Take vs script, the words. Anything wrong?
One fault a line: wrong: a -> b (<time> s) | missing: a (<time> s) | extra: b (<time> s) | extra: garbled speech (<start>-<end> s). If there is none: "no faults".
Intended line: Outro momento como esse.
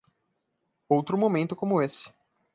no faults